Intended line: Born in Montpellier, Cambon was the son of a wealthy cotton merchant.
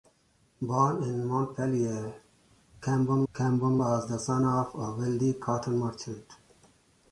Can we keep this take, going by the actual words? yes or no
no